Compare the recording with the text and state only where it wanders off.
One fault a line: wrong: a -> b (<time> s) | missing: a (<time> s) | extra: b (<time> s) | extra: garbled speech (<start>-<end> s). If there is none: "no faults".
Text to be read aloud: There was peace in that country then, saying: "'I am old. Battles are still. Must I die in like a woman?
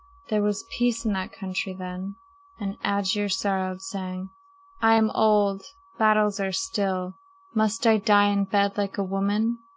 extra: and Aegir sorrowed (2.6 s)
extra: bed (8.5 s)